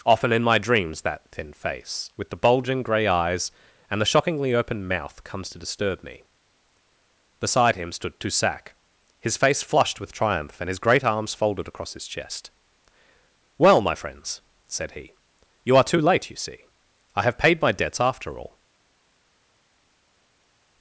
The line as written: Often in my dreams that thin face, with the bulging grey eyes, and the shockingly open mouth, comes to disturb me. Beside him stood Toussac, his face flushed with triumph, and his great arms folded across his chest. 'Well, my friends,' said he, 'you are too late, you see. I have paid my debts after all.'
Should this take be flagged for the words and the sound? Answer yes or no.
no